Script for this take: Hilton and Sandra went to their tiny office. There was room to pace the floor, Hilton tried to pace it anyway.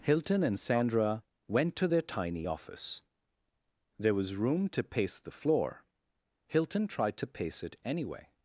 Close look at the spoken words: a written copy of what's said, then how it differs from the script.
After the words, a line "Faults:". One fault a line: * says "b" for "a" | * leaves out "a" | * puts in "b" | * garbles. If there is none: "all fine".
Hilton and Sandra went to their tiny office. There was room to pace the floor, Hilton tried to pace it anyway.
Faults:
all fine